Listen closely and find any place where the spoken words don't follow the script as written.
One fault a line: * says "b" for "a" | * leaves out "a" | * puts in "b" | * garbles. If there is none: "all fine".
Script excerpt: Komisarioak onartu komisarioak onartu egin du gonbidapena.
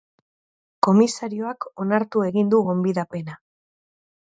* leaves out "komisarioak onartu"